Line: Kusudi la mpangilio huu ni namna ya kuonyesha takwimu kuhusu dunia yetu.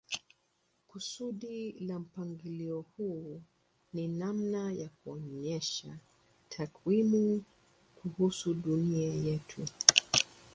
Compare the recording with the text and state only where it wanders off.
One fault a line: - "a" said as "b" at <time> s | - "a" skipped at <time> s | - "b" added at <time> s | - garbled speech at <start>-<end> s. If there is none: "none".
none